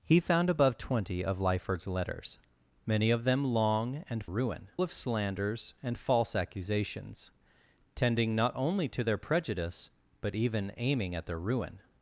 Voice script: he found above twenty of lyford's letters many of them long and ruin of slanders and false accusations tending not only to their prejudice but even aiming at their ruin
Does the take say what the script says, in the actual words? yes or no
yes